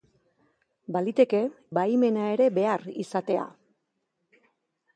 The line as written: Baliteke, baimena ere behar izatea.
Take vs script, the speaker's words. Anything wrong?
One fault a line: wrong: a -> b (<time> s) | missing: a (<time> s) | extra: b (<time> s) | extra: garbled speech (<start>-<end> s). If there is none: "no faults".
no faults